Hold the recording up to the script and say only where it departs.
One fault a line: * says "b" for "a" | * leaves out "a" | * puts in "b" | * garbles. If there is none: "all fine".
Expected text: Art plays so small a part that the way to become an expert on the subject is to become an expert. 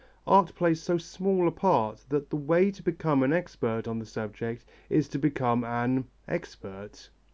all fine